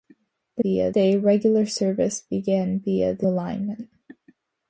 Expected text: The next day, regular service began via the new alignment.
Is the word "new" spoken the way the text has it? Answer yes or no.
no